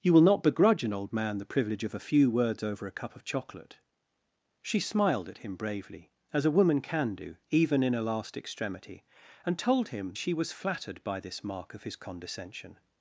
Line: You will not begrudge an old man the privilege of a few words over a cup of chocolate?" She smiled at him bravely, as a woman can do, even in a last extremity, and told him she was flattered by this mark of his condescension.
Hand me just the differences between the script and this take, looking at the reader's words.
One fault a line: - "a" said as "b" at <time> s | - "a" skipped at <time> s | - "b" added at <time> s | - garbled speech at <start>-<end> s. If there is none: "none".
none